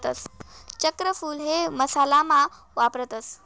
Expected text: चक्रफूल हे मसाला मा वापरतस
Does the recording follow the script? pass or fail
pass